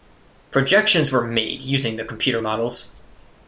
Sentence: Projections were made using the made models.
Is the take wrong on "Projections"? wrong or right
right